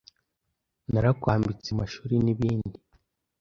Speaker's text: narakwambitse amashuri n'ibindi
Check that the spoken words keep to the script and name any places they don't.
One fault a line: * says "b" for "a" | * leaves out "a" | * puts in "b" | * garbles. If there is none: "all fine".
all fine